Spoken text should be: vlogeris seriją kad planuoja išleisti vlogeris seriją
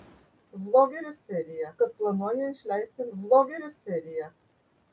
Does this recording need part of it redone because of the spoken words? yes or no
no